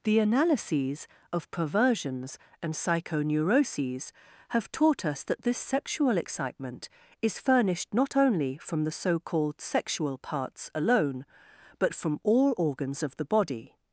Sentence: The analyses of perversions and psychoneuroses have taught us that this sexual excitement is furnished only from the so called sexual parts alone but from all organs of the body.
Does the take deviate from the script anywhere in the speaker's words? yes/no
yes